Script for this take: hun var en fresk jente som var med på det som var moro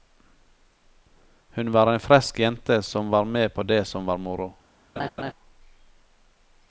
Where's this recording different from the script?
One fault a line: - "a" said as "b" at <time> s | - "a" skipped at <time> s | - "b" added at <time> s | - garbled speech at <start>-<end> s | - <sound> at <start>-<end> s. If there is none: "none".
- laugh at 5.0-5.3 s